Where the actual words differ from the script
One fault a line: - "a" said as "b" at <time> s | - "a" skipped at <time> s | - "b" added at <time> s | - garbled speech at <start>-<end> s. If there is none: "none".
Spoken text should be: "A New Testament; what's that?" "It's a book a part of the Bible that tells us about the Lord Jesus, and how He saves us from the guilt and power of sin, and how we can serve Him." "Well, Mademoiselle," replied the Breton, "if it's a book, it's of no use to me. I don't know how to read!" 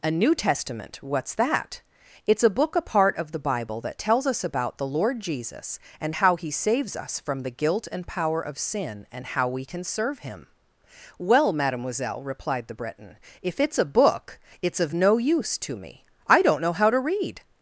none